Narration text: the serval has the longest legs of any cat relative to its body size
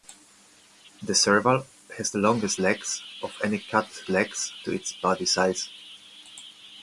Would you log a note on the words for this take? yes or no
yes